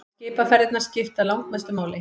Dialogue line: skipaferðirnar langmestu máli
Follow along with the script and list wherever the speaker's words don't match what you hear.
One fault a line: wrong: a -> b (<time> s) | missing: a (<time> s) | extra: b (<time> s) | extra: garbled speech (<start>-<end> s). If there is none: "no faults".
extra: skipta (0.8 s)